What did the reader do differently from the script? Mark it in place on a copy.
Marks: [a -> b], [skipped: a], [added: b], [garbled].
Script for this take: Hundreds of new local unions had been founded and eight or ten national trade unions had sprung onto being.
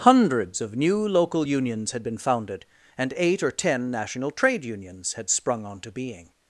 Hundreds of new local unions had been founded and eight or ten national trade unions had sprung onto being.